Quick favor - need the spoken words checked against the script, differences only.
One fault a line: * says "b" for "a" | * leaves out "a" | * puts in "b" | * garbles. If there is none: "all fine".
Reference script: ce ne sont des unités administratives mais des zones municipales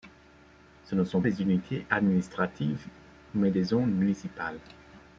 all fine